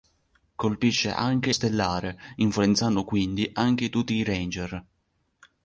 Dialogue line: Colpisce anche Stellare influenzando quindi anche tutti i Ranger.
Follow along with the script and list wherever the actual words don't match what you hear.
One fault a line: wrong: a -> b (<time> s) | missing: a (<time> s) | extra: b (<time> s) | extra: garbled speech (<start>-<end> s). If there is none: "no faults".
no faults